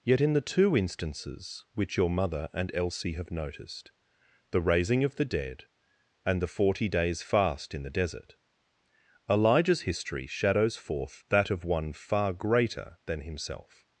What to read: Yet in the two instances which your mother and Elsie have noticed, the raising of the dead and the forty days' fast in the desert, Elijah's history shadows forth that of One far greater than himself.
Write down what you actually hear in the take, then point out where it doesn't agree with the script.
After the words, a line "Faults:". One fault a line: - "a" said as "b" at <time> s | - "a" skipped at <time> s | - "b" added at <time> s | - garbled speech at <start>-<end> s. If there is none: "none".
Yet in the two instances which your mother and Elsie have noticed, the raising of the dead and the forty days' fast in the desert, Elijah's history shadows forth that of One far greater than himself.
Faults:
none